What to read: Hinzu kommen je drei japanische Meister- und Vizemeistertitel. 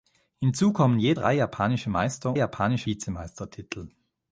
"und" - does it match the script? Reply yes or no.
no